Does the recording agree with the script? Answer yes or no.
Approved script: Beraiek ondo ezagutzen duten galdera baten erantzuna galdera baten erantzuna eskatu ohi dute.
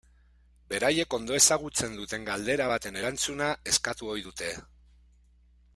no